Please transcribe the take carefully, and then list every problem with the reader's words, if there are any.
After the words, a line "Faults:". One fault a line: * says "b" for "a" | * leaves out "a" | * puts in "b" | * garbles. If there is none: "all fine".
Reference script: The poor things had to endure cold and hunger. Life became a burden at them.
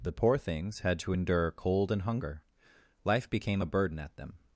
The poor things had to endure cold and hunger. Life became a burden at them.
Faults:
all fine